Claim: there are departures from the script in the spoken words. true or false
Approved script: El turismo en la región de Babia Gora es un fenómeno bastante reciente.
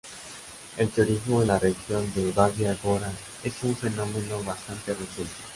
false